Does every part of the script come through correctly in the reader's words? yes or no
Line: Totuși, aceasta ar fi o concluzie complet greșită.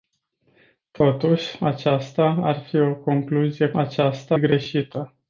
no